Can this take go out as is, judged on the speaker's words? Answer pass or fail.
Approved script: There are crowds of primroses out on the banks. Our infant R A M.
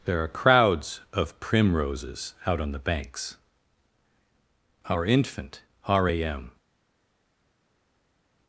pass